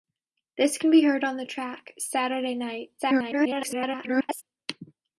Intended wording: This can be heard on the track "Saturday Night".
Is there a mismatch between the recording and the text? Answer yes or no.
yes